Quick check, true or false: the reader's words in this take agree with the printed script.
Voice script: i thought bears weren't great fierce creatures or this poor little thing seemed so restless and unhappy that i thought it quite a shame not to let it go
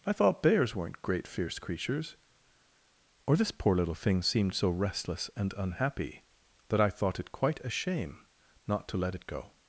true